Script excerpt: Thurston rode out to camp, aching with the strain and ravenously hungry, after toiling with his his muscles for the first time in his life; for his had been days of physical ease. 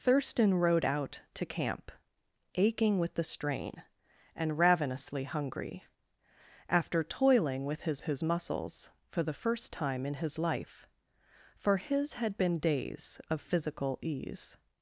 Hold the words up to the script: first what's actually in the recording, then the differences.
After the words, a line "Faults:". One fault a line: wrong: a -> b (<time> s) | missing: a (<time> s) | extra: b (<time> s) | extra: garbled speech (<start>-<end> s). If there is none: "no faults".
Thurston rode out to camp, aching with the strain and ravenously hungry, after toiling with his his muscles for the first time in his life; for his had been days of physical ease.
Faults:
no faults